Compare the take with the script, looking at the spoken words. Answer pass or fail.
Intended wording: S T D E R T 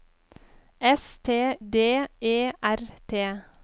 pass